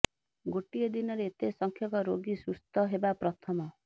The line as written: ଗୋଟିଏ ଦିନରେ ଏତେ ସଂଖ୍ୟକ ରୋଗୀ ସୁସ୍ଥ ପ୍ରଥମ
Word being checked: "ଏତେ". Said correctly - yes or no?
yes